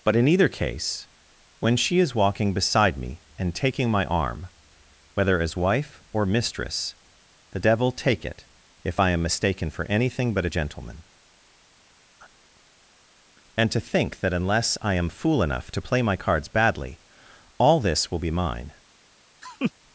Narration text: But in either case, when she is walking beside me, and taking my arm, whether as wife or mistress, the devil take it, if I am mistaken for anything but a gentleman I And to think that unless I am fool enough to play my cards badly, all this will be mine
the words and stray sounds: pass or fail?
fail